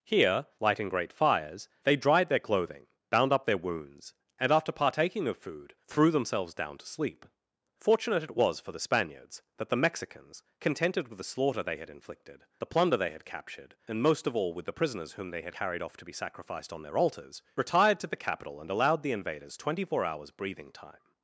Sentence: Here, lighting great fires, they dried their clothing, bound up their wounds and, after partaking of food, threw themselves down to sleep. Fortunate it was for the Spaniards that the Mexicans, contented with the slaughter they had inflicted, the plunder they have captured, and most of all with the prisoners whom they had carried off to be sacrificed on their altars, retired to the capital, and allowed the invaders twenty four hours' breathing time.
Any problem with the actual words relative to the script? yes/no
yes